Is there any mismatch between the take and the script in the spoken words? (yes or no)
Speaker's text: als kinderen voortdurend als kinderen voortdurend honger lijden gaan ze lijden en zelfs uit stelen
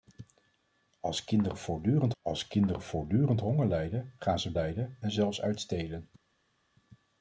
no